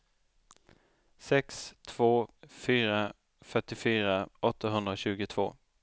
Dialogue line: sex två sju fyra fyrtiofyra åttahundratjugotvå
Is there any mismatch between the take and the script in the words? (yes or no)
yes